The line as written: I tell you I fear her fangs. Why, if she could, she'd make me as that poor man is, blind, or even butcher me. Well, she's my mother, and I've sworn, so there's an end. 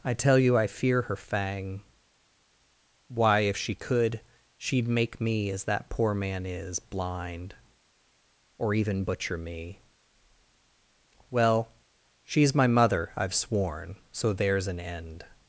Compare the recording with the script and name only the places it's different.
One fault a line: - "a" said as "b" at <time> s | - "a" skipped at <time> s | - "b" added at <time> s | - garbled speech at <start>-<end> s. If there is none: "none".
- "fangs" said as "fang" at 1.1 s
- "and" skipped at 13.1 s